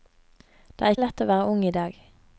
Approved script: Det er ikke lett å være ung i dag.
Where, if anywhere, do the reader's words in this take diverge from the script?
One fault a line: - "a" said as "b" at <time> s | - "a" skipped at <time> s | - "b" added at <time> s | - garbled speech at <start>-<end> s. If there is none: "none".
- "ikke" skipped at 0.9 s